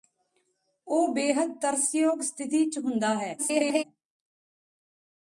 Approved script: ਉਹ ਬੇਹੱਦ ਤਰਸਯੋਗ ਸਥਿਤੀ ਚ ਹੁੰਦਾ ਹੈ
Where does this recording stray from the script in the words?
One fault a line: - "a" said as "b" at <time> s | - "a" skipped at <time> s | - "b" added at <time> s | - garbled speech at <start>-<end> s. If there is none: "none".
- garbled speech at 3.4-3.8 s